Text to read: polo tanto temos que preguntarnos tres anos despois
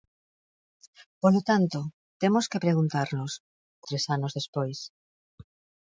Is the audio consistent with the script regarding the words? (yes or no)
yes